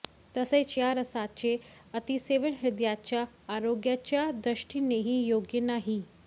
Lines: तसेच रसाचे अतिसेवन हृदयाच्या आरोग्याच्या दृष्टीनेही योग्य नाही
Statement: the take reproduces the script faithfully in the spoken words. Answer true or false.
false